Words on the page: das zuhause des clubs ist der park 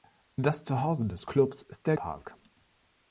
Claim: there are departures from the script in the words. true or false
false